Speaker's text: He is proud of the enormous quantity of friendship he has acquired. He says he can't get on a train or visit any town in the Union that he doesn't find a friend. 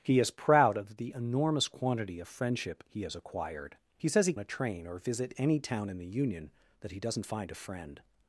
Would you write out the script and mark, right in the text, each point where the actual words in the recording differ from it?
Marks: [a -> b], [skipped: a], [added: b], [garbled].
He is proud of the enormous quantity of friendship he has acquired. He says he [skipped: can't get on] a train or visit any town in the Union that he doesn't find a friend.